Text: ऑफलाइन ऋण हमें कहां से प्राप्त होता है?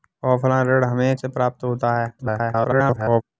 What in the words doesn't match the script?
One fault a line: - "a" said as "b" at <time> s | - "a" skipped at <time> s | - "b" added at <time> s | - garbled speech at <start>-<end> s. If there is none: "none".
- "कहां" skipped at 1.2 s
- garbled speech at 2.2-3.2 s